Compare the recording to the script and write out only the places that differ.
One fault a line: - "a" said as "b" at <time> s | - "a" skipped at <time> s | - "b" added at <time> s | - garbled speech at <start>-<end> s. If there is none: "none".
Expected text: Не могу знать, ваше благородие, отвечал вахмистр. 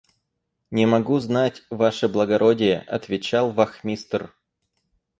none